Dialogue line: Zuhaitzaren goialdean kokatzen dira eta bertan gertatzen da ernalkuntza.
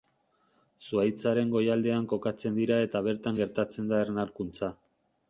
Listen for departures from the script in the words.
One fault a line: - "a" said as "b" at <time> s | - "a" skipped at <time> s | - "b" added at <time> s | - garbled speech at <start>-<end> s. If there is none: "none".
none